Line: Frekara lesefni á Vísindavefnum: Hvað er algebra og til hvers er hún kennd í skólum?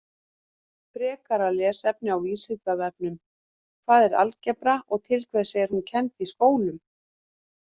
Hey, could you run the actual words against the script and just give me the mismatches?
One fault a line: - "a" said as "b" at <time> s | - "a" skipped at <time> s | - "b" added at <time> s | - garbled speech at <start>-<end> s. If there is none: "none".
none